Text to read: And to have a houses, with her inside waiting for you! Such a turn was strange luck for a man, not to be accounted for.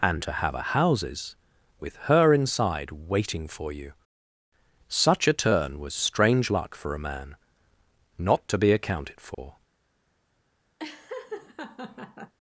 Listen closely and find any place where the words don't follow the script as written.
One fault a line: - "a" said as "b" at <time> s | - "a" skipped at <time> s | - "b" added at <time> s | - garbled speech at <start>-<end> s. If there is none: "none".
none